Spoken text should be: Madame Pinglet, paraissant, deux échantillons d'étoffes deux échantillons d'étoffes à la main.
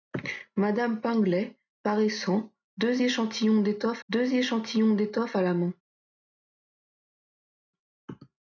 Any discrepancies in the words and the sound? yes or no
no